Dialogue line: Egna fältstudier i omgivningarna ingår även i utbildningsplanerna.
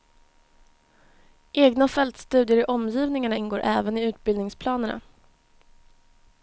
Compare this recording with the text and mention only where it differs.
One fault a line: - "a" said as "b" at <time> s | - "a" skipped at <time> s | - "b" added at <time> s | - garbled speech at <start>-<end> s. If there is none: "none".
none